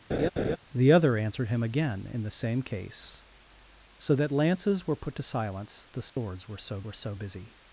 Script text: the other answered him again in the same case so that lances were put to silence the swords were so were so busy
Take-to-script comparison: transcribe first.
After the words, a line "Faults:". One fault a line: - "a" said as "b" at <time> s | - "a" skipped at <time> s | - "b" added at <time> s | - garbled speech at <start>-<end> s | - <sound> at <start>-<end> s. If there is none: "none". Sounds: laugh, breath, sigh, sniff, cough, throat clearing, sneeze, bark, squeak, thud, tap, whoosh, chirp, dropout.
the other answered him again in the same case so that lances were put to silence the swords were so were so busy
Faults:
- laugh at 0.1-0.6 s
- dropout at 6.1-6.2 s